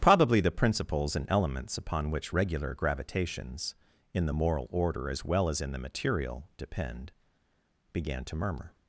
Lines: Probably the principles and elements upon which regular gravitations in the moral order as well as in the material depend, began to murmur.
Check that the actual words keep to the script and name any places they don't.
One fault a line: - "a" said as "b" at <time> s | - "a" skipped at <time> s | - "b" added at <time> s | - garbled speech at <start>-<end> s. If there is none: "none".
none